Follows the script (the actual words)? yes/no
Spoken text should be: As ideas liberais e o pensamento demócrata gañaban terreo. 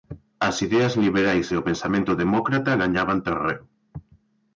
yes